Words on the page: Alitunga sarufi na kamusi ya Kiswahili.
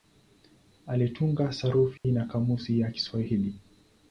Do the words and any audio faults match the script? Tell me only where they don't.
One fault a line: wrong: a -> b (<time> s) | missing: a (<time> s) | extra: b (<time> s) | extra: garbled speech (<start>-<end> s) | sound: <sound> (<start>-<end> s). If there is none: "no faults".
sound: dropout (2.0-2.0 s)